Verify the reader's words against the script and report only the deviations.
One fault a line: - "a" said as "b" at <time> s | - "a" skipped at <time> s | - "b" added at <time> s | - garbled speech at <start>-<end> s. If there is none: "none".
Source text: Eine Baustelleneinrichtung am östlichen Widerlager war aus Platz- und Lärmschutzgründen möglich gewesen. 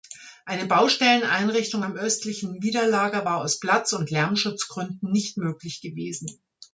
- "nicht" added at 5.1 s